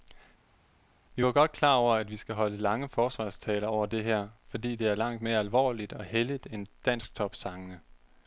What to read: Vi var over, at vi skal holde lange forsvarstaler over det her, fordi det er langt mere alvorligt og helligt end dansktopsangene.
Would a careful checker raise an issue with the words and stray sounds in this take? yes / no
yes